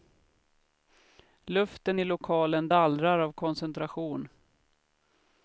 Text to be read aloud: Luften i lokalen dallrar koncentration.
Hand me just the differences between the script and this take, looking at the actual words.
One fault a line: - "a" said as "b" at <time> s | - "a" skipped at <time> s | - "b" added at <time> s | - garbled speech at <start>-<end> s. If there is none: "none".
- "av" added at 3.2 s